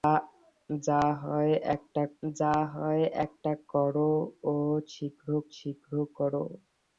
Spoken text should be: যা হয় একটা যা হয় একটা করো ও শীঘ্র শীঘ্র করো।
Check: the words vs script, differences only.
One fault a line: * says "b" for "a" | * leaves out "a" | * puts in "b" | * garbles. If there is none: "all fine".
all fine